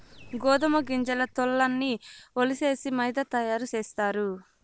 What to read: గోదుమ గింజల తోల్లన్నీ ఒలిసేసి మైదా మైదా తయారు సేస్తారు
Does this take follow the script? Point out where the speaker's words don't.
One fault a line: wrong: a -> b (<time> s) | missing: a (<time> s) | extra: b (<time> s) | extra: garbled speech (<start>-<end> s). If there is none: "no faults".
missing: మైదా (3.2 s)